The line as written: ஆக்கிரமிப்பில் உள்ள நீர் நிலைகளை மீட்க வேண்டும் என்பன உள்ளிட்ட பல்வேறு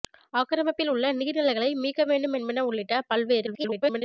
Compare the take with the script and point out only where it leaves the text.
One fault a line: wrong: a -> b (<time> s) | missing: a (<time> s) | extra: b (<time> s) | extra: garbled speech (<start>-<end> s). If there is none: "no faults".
extra: garbled speech (3.5-4.0 s)